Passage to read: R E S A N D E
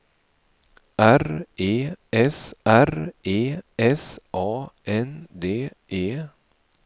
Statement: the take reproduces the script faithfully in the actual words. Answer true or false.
false